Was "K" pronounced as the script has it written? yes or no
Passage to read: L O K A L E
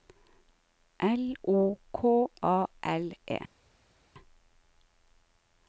yes